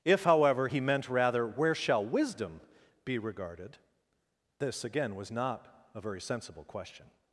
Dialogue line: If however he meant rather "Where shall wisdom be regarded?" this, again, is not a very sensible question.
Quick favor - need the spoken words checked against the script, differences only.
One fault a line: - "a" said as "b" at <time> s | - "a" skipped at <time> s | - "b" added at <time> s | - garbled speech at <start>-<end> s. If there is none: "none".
- "is" said as "was" at 5.2 s